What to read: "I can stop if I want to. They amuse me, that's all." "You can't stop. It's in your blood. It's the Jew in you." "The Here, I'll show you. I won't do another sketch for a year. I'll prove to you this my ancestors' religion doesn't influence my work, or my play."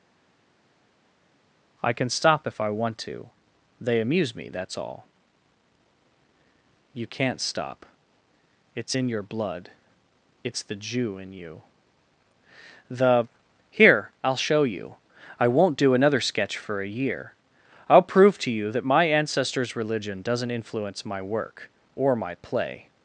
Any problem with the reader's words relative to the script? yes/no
yes